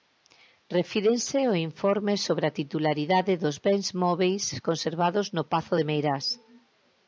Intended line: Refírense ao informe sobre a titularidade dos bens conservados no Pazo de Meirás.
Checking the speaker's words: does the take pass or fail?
fail